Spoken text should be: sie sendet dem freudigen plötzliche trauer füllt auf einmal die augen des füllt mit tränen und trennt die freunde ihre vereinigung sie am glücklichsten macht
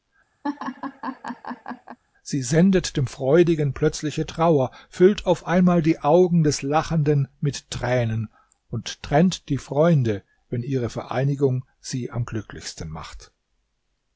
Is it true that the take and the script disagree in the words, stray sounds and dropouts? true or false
true